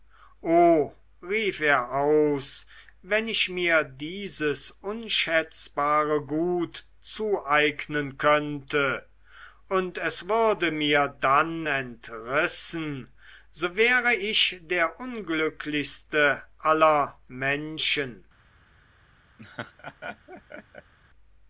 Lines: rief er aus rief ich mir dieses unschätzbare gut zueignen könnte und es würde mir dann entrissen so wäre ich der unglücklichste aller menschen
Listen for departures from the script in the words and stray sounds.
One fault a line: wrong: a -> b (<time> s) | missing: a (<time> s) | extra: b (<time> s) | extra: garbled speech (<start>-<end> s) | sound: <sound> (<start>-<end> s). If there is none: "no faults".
wrong: rief -> wenn (3.0 s)
sound: laugh (19.4-20.9 s)